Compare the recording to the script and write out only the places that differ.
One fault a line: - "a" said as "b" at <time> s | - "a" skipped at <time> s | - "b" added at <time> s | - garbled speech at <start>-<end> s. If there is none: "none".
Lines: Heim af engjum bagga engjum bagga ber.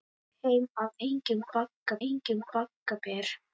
none